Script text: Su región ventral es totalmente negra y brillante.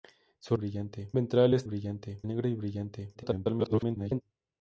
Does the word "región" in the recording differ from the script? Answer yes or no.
yes